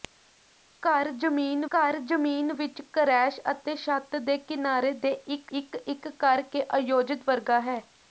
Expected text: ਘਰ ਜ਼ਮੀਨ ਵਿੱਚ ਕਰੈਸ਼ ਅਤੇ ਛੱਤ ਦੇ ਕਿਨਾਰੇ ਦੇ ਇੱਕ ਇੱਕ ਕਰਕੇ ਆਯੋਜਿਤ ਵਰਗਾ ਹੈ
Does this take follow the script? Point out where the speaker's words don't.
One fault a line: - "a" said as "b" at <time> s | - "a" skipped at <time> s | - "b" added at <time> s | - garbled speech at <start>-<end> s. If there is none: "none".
- "ਘਰ ਜ਼ਮੀਨ" added at 1.7 s
- "ਇੱਕ" added at 5.8 s